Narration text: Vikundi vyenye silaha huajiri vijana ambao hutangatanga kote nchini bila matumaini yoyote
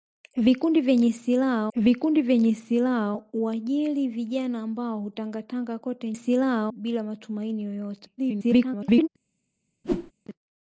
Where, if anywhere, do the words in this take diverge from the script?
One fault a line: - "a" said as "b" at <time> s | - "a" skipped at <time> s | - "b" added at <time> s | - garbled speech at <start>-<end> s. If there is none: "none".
- "vikundi vyenye silaha" added at 1.8 s
- "nchini" said as "silaha" at 6.1 s
- garbled speech at 8.2-9.1 s